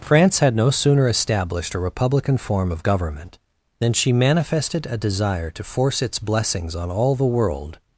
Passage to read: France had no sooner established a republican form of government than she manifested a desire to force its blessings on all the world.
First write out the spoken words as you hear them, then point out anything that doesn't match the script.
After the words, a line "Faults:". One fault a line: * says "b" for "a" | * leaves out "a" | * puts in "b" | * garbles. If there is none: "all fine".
France had no sooner established a republican form of government than she manifested a desire to force its blessings on all the world.
Faults:
all fine